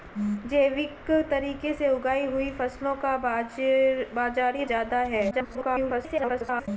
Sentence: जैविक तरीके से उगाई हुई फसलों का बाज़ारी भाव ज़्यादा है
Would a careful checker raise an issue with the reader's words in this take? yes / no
yes